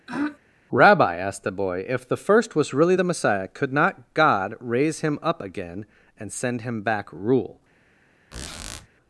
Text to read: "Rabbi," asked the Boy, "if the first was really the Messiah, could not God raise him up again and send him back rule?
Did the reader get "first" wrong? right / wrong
right